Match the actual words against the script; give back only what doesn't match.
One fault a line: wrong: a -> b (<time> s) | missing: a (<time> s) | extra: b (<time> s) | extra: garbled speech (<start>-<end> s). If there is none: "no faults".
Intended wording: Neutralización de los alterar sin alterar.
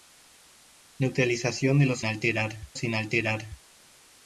no faults